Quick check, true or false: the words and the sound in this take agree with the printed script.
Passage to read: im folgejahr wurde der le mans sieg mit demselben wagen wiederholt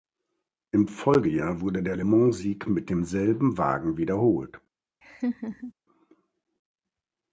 false